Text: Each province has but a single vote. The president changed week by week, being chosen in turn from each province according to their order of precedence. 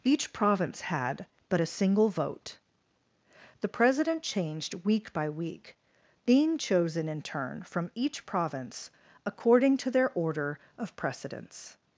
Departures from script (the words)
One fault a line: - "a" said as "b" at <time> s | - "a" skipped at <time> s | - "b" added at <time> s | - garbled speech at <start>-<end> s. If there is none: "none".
- "has" said as "had" at 0.8 s